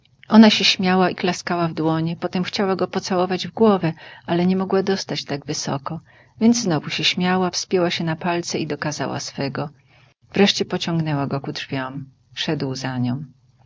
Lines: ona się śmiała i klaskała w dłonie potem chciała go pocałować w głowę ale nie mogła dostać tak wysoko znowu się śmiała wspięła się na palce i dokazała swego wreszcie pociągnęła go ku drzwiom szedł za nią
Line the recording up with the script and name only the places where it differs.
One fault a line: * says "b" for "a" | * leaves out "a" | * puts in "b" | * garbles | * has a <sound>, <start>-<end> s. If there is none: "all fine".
* puts in "więc"